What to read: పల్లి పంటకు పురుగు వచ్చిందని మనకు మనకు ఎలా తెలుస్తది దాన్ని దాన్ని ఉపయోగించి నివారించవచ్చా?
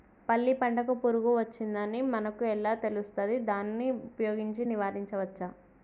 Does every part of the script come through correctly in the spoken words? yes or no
no